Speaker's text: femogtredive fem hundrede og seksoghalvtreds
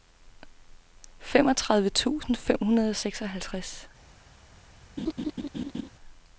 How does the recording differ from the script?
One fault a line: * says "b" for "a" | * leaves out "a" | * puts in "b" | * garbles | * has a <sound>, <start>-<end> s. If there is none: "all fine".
* puts in "tusind"
* has a laugh, 5.0-5.9 s